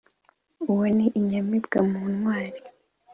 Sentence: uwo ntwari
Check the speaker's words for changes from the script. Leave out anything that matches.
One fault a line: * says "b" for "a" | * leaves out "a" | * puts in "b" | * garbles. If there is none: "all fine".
* puts in "ni inyamibwa mu"